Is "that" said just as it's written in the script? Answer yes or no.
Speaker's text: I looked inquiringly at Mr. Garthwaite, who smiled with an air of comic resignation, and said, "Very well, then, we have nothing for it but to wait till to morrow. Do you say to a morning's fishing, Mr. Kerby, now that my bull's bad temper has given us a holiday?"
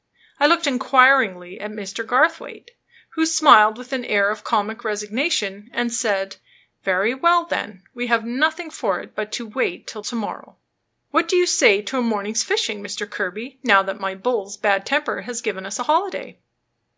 yes